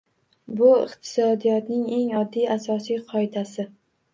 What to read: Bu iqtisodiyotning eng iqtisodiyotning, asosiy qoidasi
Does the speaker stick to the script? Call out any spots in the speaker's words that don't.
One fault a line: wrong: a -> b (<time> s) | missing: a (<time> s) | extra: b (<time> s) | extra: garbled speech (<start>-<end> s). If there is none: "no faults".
wrong: iqtisodiyotning -> oddiy (2.2 s)